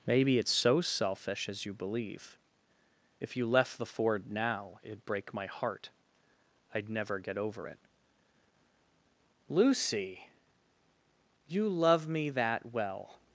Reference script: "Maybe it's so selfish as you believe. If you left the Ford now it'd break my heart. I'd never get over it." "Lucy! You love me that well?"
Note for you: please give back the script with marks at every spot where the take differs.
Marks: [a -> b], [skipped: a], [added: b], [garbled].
"Maybe it's so selfish as you believe. If you left the Ford now it'd break my heart. I'd never get over it." "Lucy! You love me that well?"